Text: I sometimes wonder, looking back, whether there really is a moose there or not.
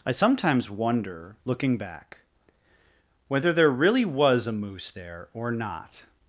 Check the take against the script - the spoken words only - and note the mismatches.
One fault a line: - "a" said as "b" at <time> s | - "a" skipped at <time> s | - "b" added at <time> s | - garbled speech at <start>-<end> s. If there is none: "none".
- "is" said as "was" at 4.1 s